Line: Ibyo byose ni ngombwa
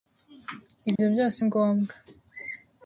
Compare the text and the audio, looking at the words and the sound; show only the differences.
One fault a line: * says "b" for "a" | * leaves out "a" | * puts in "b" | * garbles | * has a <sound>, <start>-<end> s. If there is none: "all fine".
* has a dropout, 1.0-1.0 s
* leaves out "ni"